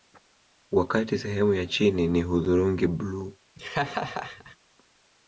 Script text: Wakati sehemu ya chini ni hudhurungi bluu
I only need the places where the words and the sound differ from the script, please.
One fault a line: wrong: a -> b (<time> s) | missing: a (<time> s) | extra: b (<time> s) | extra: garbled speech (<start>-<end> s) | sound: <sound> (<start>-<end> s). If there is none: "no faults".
sound: laugh (3.6-4.6 s)